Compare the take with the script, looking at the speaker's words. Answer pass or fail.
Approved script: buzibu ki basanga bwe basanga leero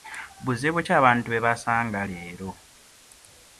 fail